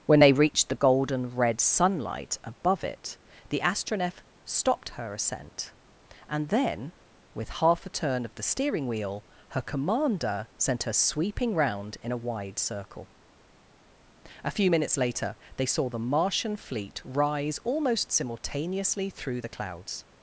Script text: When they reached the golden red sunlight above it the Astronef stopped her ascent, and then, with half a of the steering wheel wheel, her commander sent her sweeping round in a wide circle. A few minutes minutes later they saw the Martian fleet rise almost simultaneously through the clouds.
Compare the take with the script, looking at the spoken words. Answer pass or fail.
fail